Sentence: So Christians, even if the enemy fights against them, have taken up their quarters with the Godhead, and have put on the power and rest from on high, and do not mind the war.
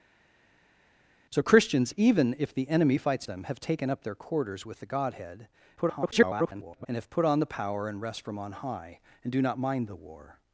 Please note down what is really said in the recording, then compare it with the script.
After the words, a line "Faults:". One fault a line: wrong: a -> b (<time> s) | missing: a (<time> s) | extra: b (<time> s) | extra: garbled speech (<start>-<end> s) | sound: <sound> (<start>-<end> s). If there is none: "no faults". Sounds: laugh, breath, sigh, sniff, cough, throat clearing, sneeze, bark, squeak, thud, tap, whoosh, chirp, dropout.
So Christians, even if the enemy fights them, have taken up their quarters with the Godhead, [garbled] and have put on the power and rest from on high, and do not mind the war.
Faults:
missing: against (3.3 s)
extra: garbled speech (5.8-6.9 s)